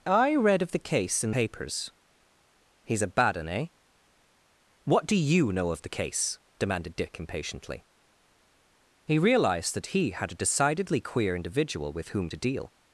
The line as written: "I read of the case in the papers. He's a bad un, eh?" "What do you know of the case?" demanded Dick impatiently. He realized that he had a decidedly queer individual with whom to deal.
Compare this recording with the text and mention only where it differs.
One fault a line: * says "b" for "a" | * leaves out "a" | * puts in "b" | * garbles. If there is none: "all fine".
* leaves out "the"